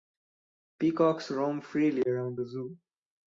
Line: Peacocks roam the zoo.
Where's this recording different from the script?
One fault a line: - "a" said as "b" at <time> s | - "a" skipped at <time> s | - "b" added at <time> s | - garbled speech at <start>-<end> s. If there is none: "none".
- "freely around" added at 1.6 s